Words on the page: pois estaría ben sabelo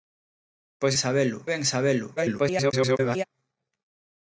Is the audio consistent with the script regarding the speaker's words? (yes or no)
no